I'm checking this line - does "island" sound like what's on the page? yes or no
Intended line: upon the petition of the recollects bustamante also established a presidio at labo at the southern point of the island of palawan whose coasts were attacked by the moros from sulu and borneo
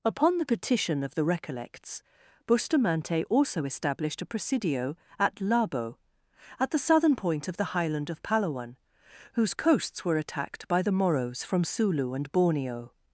no